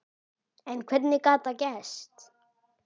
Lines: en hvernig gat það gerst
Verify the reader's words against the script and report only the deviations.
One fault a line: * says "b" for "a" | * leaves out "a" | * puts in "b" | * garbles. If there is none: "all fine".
all fine